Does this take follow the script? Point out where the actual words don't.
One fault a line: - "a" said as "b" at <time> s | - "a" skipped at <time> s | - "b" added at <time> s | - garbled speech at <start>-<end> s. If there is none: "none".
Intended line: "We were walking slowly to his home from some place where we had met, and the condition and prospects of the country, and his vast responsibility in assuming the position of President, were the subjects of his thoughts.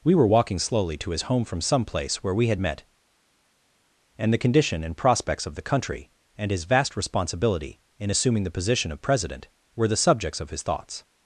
none